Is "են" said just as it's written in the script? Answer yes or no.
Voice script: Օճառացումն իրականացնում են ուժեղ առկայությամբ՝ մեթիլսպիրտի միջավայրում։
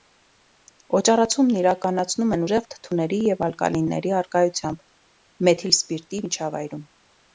yes